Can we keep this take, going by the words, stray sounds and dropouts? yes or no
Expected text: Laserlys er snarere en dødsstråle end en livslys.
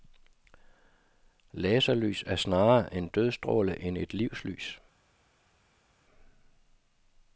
no